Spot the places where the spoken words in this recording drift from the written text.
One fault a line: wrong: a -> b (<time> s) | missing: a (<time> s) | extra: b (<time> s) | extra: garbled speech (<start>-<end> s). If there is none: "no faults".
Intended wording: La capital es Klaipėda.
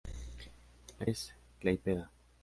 missing: capital (1.1 s)